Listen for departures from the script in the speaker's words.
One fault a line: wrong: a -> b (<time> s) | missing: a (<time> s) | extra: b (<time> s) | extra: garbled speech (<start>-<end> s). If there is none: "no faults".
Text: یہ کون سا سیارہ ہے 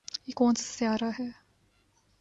no faults